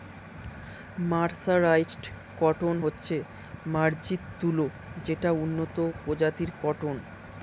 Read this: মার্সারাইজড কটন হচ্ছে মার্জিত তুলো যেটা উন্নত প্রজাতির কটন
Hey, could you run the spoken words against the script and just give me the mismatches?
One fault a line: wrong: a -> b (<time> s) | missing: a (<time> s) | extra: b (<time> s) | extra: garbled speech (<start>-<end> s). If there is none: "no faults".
no faults